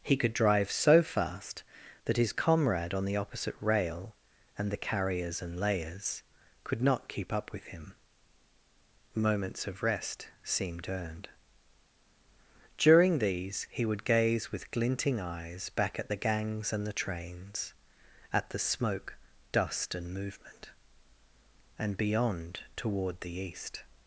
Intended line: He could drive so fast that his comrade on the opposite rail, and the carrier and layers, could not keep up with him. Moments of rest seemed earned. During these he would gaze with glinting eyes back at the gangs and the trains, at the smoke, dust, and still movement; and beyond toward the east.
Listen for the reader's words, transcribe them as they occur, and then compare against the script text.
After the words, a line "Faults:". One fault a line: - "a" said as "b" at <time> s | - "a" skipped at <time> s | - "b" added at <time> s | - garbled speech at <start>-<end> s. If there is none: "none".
He could drive so fast that his comrade on the opposite rail, and the carriers and layers, could not keep up with him. Moments of rest seemed earned. During these he would gaze with glinting eyes back at the gangs and the trains, at the smoke, dust, and movement; and beyond toward the east.
Faults:
- "carrier" said as "carriers" at 4.8 s
- "still" skipped at 20.1 s